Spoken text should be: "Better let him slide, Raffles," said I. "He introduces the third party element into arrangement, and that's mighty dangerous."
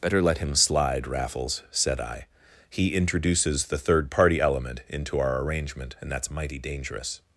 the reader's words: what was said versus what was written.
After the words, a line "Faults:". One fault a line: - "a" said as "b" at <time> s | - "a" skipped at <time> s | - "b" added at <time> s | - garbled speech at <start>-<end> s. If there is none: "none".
"Better let him slide, Raffles," said I. "He introduces the third party element into our arrangement, and that's mighty dangerous."
Faults:
- "our" added at 5.2 s